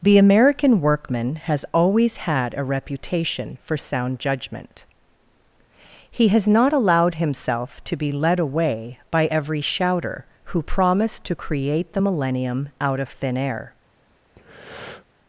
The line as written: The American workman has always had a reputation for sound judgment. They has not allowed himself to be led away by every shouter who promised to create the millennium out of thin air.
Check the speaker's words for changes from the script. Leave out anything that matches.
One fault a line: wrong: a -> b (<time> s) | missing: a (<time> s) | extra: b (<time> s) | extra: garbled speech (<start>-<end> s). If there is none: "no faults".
wrong: They -> He (6.1 s)